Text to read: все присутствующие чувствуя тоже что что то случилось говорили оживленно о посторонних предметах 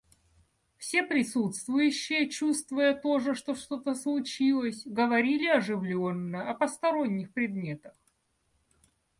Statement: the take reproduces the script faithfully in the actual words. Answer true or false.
true